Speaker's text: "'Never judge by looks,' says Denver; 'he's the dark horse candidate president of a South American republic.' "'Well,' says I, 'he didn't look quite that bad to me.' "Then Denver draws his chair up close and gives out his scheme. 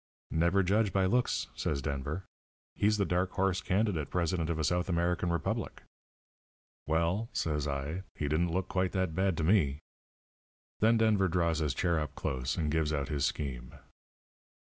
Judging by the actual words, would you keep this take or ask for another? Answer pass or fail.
pass